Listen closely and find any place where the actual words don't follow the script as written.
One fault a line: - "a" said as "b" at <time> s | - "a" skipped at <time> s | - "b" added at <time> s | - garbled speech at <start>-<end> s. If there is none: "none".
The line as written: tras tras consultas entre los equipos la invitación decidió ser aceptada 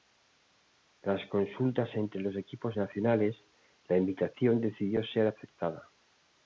- "tras" skipped at 1.3 s
- "nacionales" added at 2.8 s